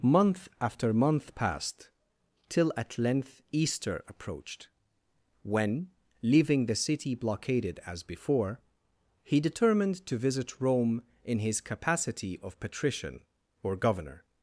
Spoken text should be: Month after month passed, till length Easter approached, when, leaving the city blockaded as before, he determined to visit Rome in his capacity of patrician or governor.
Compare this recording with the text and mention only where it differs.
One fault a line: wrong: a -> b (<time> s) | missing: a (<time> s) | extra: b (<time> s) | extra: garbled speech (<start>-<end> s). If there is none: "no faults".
extra: at (2.8 s)